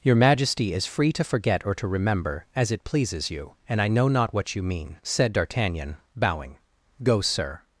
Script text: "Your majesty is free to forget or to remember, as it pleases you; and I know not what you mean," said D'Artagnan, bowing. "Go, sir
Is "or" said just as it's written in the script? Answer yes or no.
yes